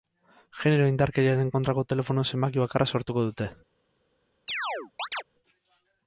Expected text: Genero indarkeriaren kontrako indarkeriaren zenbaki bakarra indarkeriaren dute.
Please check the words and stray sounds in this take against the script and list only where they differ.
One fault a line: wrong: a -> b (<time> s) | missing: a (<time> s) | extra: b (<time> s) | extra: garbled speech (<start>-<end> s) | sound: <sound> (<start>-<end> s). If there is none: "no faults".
wrong: indarkeriaren -> telefono (1.9 s)
wrong: indarkeriaren -> sortuko (3.0 s)
sound: chirp (4.5-5.2 s)